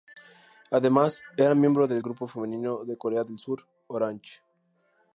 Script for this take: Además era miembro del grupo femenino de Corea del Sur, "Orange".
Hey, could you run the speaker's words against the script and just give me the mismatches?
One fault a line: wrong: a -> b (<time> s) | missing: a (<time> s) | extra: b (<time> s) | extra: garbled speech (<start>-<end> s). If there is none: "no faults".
no faults